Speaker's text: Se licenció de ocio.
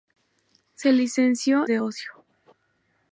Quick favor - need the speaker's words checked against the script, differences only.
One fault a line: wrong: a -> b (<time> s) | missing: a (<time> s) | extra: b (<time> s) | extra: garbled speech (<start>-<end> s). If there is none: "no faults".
no faults